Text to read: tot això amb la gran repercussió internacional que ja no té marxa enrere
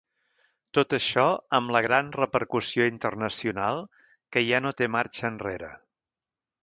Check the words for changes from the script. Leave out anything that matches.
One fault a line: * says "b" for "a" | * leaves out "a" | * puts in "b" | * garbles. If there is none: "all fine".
all fine